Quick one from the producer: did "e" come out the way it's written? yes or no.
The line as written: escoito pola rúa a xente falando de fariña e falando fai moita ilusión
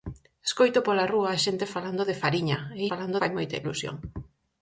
yes